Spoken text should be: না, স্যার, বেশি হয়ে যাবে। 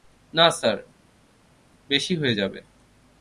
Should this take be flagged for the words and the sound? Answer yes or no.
no